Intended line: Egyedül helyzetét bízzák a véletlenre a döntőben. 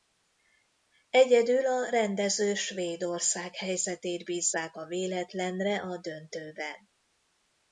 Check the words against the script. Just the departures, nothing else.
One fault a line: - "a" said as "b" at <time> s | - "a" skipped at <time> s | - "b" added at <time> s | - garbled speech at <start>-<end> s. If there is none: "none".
- "a rendező Svédország" added at 1.6 s